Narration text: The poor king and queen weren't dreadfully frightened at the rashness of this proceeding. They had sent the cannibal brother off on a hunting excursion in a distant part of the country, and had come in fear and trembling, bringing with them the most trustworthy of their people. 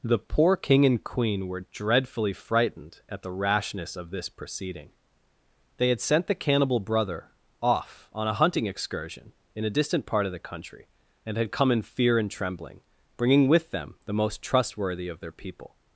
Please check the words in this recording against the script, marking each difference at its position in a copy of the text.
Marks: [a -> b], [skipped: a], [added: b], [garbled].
The poor king and queen [weren't -> were] dreadfully frightened at the rashness of this proceeding. They had sent the cannibal brother off on a hunting excursion in a distant part of the country, and had come in fear and trembling, bringing with them the most trustworthy of their people.